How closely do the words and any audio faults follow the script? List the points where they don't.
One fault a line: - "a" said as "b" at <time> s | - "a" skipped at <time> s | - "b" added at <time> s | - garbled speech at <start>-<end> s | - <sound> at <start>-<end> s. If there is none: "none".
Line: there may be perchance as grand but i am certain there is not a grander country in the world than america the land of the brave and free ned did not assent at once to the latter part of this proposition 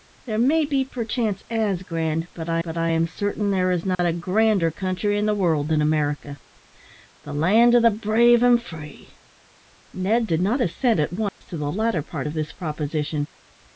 - "but i" added at 2.6 s
- dropout at 3.9-4.0 s
- dropout at 11.3-11.4 s